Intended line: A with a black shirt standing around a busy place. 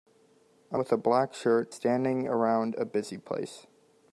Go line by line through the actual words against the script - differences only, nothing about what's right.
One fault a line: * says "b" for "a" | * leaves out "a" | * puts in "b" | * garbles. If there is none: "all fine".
all fine